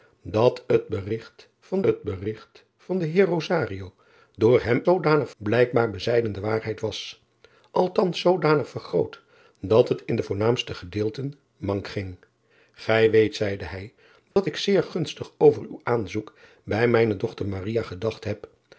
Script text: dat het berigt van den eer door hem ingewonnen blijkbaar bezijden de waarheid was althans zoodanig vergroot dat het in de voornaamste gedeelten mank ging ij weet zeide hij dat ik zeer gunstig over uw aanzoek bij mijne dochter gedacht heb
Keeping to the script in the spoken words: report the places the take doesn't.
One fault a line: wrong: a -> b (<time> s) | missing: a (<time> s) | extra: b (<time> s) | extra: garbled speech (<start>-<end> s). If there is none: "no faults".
extra: het berigt van (1.8 s)
wrong: ingewonnen -> zoodanig (4.8 s)